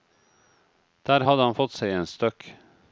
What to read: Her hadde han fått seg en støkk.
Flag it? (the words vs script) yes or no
yes